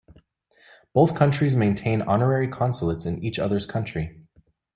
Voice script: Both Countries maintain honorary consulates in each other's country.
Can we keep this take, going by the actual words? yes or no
yes